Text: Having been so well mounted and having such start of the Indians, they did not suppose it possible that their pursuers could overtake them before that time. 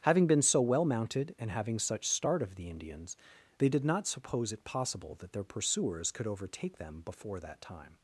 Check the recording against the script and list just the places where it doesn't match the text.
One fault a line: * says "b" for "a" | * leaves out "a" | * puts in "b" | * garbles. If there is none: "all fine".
all fine